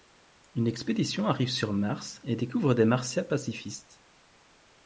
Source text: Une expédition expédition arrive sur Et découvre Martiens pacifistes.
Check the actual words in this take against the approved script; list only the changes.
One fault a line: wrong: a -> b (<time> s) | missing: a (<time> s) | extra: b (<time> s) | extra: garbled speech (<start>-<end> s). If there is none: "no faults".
missing: expédition (1.3 s)
extra: Mars (1.7 s)
extra: des (2.7 s)